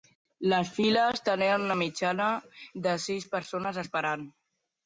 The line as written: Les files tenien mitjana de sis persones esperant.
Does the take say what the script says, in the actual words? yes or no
no